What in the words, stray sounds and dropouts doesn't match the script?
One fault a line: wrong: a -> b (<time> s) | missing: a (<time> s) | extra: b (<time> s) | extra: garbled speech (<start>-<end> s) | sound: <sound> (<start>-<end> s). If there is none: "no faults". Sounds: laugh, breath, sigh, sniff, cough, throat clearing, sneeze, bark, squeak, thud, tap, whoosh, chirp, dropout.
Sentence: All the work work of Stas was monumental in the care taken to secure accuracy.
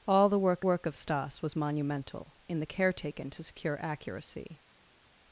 no faults